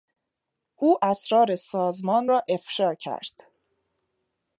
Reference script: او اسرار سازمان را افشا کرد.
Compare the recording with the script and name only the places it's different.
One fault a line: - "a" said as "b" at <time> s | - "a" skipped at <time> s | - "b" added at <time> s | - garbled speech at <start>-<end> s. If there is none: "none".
none